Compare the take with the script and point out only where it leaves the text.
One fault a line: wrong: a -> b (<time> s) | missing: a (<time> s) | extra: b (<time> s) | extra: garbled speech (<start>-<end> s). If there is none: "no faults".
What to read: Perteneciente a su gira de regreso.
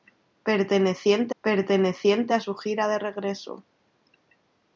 extra: perteneciente (1.4 s)